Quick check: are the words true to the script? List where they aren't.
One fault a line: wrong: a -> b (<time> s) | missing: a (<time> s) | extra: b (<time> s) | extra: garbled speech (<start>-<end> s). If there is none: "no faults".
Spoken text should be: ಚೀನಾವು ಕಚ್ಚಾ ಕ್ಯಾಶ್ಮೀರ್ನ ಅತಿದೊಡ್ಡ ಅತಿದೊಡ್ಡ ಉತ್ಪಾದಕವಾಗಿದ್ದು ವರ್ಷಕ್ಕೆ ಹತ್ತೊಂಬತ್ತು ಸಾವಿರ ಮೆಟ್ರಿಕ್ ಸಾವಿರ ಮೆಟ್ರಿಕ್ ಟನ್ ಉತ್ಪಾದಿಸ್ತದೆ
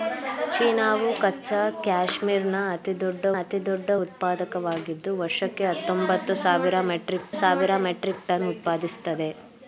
no faults